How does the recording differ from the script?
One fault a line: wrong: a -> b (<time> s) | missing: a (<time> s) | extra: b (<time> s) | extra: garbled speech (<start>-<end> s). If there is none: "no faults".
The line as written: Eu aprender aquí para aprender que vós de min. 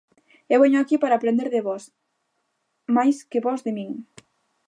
wrong: aprender -> veño (0.6 s)
extra: de vós máis (1.5 s)